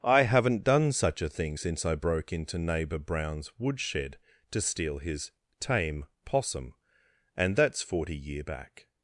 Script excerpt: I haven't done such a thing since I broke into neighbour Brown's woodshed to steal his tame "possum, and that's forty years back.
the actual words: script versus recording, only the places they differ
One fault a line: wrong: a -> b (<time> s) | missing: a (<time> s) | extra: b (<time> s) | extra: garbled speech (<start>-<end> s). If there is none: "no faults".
wrong: years -> year (8.2 s)